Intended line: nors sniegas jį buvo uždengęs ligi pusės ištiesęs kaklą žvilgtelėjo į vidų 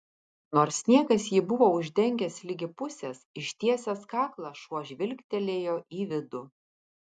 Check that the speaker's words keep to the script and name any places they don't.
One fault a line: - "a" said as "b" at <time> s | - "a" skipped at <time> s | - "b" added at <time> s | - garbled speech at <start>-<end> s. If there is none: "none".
- "šuo" added at 4.7 s